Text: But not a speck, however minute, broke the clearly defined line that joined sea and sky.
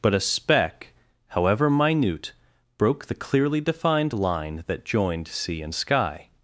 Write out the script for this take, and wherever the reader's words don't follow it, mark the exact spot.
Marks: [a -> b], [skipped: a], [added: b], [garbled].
But [skipped: not] a speck, however minute, broke the clearly defined line that joined sea and sky.